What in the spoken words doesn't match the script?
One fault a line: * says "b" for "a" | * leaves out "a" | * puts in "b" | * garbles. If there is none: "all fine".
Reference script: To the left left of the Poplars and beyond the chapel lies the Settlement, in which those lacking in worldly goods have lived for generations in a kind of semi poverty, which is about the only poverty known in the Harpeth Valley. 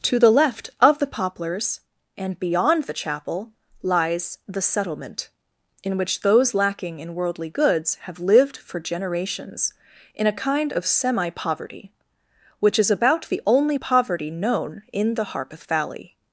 * leaves out "left"